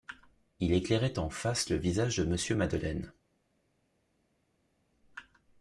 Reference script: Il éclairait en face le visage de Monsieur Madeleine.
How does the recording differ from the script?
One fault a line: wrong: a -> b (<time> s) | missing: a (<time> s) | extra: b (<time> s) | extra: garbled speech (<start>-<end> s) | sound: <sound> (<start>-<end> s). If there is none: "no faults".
no faults